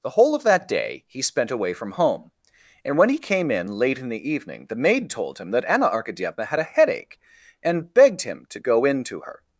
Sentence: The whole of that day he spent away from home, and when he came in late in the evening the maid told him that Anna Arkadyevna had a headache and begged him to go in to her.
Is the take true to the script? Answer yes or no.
yes